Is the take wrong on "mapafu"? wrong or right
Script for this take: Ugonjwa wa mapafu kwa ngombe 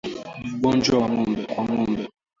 wrong